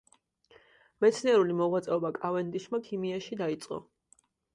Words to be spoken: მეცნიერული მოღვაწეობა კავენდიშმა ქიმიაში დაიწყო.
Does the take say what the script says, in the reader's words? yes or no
yes